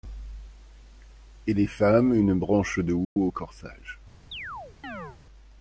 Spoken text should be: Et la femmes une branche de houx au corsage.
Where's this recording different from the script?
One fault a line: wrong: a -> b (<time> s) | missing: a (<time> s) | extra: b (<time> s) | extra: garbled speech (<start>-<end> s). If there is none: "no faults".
wrong: la -> les (1.5 s)